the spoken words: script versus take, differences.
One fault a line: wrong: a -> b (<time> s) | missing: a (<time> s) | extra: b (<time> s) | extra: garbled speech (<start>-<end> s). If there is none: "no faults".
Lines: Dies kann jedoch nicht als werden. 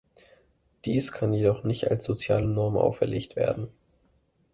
extra: soziale Norm auferlegt (2.0 s)